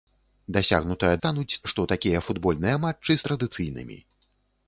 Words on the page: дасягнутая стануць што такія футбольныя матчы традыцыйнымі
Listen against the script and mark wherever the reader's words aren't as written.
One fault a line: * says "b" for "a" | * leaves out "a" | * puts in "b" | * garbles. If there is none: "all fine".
all fine